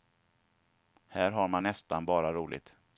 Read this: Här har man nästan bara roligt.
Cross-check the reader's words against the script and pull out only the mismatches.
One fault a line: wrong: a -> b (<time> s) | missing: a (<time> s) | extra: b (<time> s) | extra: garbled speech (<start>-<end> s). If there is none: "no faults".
no faults